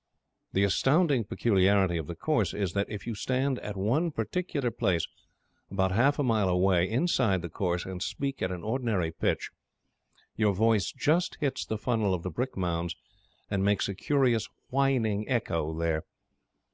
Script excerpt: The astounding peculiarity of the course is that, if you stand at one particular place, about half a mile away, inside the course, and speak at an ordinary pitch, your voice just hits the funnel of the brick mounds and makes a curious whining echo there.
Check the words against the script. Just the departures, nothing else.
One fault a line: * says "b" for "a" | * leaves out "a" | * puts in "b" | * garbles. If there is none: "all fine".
all fine